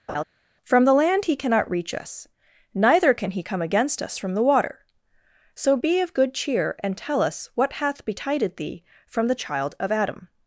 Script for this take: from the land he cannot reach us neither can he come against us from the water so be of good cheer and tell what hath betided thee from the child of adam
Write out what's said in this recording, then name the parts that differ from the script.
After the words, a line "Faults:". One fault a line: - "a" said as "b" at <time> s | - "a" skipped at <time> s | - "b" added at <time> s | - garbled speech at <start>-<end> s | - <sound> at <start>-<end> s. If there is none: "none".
from the land he cannot reach us neither can he come against us from the water so be of good cheer and tell us what hath betided thee from the child of adam
Faults:
- laugh at 0.1-0.2 s
- "us" added at 7.2 s